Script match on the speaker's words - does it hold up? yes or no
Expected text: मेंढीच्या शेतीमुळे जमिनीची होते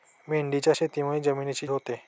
yes